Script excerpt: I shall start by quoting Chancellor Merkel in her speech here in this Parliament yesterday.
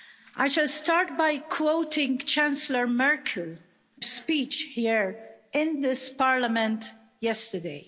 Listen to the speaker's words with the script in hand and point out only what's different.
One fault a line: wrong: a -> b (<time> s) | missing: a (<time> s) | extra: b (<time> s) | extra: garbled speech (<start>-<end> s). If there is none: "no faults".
missing: in her (3.5 s)